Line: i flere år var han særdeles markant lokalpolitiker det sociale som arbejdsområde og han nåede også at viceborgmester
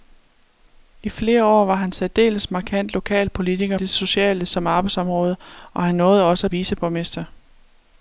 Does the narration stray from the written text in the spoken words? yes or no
no